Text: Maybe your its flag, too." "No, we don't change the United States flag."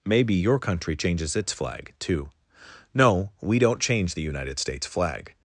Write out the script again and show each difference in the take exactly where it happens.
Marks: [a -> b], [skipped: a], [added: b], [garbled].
Maybe your [added: country changes] its flag, too." "No, we don't change the United States flag."